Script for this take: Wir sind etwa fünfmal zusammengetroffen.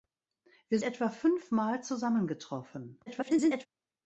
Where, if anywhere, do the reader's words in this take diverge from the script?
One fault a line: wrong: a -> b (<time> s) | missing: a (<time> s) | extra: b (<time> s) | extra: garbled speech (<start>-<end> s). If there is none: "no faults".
missing: sind (0.8 s)
extra: garbled speech (3.1-3.7 s)